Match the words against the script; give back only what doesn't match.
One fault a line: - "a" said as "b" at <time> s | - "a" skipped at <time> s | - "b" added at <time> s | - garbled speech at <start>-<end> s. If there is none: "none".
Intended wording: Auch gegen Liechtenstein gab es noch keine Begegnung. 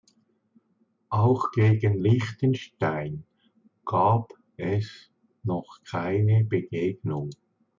none